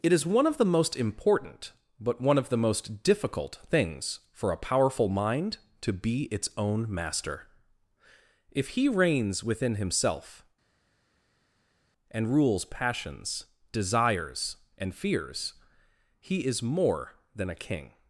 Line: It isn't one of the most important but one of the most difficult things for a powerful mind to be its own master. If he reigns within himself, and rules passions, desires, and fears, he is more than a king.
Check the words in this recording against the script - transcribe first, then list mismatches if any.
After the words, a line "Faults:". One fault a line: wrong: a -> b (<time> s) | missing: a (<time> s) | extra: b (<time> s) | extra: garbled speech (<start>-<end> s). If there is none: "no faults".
It is one of the most important but one of the most difficult things for a powerful mind to be its own master. If he reigns within himself, and rules passions, desires, and fears, he is more than a king.
Faults:
wrong: isn't -> is (0.1 s)